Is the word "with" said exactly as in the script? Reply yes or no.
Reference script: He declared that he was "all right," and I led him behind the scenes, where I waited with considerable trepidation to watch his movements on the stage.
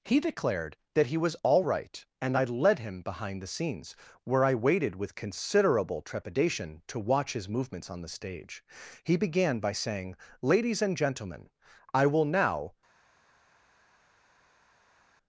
yes